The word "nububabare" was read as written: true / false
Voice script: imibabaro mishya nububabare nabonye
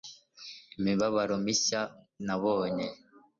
false